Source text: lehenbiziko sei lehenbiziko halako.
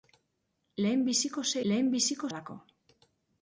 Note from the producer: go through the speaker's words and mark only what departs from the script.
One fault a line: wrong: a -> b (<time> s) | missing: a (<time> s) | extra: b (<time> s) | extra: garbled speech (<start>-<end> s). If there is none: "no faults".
no faults